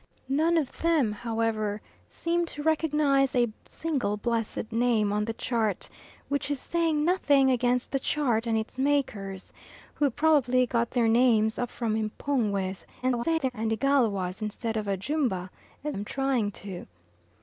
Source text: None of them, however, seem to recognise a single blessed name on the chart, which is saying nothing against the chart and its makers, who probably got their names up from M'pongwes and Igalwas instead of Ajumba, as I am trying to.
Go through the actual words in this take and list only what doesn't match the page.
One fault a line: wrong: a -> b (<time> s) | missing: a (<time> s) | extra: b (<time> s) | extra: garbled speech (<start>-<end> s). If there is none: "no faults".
extra: garbled speech (13.0-13.5 s)
missing: I (16.0 s)